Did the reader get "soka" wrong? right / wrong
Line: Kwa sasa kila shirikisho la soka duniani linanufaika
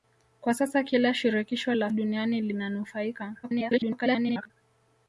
wrong